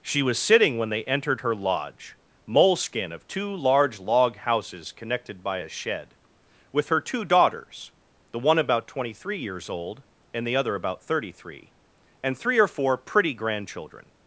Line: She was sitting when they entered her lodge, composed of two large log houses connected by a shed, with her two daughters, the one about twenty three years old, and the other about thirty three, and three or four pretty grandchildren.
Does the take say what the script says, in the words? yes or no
no